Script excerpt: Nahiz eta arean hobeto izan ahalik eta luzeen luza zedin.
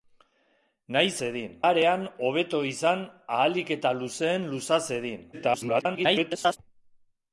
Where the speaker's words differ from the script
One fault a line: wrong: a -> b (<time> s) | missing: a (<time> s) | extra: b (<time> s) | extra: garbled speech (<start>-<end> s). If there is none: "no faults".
wrong: eta -> zedin (1.2 s)
extra: garbled speech (5.3-6.6 s)